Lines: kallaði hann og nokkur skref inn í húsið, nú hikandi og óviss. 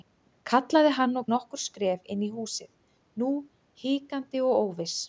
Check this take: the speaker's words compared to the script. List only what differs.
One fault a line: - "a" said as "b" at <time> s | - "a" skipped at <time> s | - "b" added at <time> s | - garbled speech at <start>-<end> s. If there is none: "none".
none